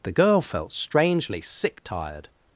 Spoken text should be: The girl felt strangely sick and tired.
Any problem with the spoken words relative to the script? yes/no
yes